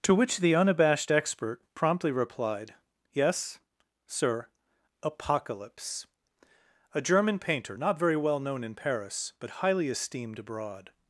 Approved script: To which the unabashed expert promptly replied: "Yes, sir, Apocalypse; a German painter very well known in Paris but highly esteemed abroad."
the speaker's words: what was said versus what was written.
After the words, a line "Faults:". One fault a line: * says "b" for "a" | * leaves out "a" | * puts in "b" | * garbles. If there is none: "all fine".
To which the unabashed expert promptly replied: "Yes, sir, Apocalypse; a German painter not very well known in Paris but highly esteemed abroad."
Faults:
* puts in "not"